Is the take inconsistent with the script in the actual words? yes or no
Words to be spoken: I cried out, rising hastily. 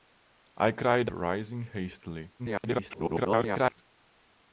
yes